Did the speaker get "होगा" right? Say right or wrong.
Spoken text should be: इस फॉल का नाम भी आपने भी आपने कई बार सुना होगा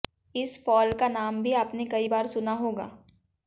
right